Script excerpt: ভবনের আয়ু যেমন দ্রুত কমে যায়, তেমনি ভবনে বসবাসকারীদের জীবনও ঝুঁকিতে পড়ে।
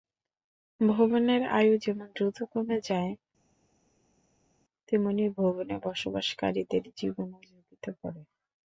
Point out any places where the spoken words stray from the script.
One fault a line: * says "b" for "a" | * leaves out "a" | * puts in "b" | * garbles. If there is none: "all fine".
all fine